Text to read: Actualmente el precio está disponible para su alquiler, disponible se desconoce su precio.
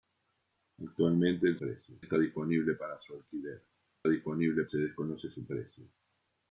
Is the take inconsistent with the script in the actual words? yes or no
no